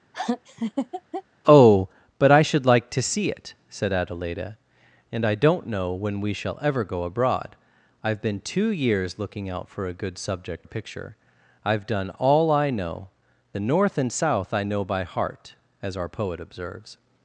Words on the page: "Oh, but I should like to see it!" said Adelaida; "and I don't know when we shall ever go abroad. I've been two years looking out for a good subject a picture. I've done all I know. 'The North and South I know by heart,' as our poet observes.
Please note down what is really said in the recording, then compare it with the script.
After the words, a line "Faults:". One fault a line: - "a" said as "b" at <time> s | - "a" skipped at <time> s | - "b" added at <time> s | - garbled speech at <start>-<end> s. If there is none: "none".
"Oh, but I should like to see it!" said Adelaida; "and I don't know when we shall ever go abroad. I've been two years looking out for a good subject a picture. I've done all I know. 'The North and South I know by heart,' as our poet observes.
Faults:
none